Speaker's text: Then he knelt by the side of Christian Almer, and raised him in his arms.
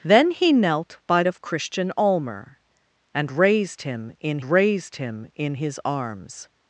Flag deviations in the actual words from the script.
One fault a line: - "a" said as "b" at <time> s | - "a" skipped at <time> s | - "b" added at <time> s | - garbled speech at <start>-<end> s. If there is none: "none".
- "the side" skipped at 1.2 s
- "raised him in" added at 4.4 s